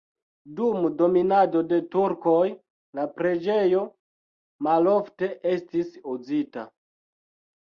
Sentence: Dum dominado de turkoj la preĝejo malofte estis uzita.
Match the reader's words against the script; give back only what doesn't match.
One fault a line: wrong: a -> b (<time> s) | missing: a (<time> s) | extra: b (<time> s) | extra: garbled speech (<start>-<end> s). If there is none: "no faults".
no faults